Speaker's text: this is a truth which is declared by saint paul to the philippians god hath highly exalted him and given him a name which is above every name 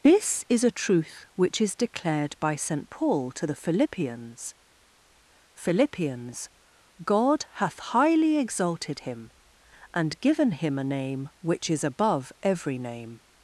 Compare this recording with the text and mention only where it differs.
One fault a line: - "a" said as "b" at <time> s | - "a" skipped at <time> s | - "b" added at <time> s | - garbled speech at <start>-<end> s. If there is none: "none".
- "philippians" added at 5.5 s